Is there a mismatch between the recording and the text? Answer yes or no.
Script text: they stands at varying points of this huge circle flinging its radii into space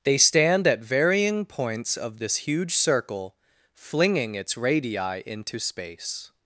yes